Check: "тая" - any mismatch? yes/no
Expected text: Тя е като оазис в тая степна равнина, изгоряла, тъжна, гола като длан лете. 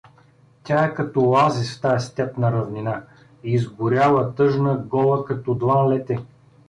no